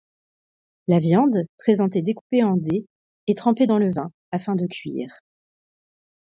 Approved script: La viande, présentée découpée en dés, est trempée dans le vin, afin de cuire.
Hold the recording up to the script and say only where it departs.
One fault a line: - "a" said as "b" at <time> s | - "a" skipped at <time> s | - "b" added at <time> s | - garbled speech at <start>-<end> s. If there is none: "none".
none